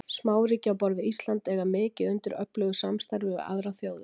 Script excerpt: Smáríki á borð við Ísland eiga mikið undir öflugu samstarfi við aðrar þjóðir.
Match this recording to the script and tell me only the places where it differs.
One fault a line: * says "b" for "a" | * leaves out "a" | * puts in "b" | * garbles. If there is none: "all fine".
all fine